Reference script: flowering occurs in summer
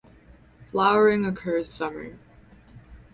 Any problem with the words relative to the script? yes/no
yes